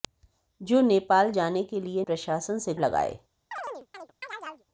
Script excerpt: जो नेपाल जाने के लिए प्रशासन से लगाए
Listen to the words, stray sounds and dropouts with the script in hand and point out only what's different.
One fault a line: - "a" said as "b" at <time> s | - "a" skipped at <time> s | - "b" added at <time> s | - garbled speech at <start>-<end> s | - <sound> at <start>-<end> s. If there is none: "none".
- chirp at 3.5-4.7 s